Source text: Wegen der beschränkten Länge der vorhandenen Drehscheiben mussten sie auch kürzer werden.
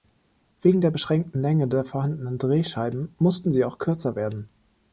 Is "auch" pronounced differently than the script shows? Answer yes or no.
no